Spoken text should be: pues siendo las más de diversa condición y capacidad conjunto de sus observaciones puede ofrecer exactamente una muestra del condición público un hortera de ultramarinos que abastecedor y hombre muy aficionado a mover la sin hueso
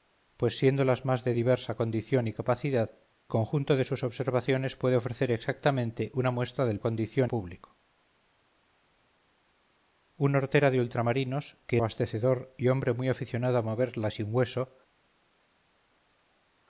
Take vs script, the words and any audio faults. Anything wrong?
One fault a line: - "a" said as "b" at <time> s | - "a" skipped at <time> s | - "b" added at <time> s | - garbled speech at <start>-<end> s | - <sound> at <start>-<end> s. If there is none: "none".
none